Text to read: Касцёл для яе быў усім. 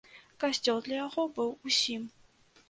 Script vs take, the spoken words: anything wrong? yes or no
yes